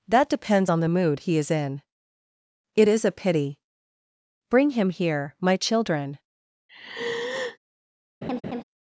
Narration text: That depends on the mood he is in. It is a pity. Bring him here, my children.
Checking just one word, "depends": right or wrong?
right